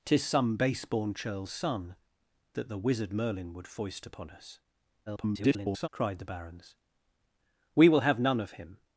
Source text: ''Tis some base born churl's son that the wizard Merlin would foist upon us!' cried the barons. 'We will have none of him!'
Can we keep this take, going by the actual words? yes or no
no